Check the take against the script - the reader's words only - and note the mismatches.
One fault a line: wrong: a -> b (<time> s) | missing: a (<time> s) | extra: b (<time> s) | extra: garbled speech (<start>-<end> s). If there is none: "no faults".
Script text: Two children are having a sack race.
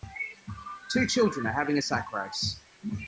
no faults